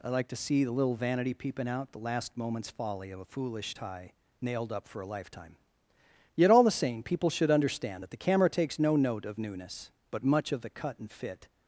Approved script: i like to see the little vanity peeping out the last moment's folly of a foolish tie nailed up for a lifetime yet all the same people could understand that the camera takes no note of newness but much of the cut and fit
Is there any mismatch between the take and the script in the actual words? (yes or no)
yes